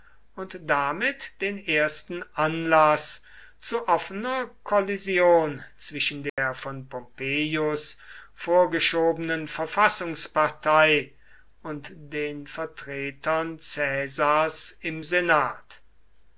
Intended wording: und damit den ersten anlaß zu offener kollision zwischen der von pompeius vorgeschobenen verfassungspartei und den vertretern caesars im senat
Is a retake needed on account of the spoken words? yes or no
no